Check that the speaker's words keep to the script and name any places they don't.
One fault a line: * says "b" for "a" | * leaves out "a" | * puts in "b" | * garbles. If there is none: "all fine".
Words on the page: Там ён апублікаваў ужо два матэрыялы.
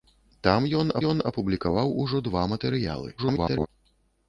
* puts in "ён"
* garbles